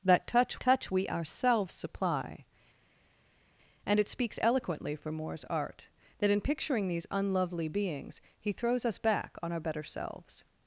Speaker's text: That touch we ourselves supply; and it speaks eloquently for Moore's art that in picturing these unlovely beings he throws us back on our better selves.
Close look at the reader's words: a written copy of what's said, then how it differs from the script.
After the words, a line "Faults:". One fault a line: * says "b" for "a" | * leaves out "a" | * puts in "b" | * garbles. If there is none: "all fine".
That touch touch we ourselves supply; and it speaks eloquently for Moore's art that in picturing these unlovely beings he throws us back on our better selves.
Faults:
* puts in "touch"